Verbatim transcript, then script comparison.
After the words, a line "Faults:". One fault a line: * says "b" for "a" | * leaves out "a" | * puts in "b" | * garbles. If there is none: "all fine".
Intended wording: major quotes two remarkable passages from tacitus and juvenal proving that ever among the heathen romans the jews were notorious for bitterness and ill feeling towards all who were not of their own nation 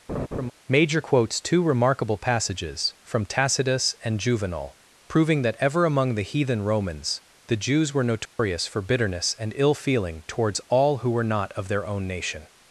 major quotes two remarkable passages from tacitus and juvenal proving that ever among the heathen romans the jews were notorious for bitterness and ill feeling towards all who were not of their own nation
Faults:
all fine